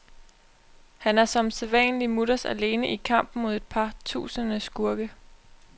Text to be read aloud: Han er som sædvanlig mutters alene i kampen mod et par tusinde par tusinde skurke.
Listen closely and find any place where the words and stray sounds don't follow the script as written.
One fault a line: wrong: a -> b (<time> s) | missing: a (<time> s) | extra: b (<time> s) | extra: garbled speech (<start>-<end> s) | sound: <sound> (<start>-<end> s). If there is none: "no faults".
missing: par tusinde (4.6 s)